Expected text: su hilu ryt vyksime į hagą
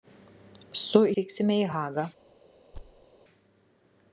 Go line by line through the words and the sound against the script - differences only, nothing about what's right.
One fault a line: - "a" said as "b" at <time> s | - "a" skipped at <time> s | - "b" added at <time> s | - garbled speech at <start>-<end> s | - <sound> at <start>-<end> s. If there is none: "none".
- "hilu ryt" skipped at 1.0 s
- thud at 2.7-3.1 s